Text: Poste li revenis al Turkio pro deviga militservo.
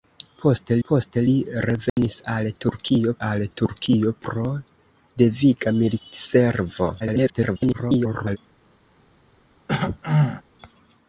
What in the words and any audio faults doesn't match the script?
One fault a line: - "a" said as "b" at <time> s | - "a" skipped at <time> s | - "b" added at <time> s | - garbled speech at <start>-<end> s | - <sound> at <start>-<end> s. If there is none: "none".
- "poste" added at 0.9 s
- dropout at 1.9-2.0 s
- "al Turkio" added at 3.3 s
- garbled speech at 7.0-8.4 s
- throat clearing at 9.7-10.4 s